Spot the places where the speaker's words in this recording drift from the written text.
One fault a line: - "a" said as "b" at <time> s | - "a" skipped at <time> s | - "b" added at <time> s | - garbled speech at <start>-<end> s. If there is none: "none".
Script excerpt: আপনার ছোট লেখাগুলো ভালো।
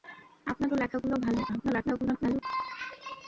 - "ছোট" skipped at 0.7 s
- garbled speech at 1.5-2.4 s